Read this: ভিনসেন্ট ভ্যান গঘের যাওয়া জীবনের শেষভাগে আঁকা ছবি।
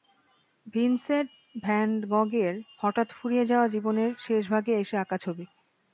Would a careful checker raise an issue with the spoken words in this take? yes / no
yes